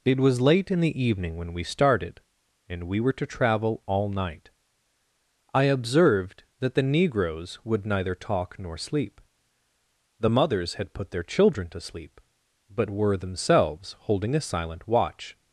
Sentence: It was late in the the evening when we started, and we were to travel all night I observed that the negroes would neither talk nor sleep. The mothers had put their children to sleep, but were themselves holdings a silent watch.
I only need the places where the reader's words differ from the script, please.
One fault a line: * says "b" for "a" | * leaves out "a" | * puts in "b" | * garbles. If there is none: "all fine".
* leaves out "the"
* says "holding" for "holdings"